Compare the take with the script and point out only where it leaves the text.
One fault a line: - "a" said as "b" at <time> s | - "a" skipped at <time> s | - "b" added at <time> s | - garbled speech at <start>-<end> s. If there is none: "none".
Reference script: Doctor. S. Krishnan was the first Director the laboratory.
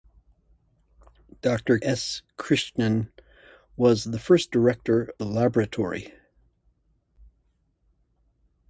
none